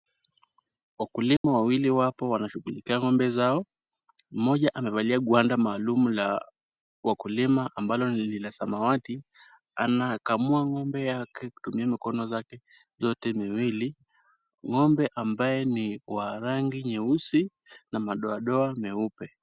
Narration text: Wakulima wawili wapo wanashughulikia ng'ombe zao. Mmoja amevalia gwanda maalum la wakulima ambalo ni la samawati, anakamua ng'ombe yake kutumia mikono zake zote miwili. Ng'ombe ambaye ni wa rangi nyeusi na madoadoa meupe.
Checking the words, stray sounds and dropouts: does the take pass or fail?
fail